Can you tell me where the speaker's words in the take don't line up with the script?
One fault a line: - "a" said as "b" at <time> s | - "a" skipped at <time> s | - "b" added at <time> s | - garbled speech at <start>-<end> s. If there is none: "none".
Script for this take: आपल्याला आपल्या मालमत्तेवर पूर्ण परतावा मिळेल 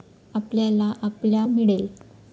- "मालमत्तेवर पूर्ण परतावा" skipped at 1.4 s